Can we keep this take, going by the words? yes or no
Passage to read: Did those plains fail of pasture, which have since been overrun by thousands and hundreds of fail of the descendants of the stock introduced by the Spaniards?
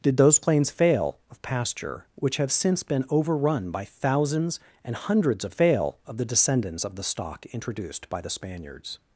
yes